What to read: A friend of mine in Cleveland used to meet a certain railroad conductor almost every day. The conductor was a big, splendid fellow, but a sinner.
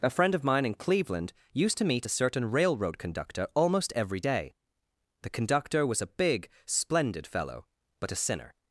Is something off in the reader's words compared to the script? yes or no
no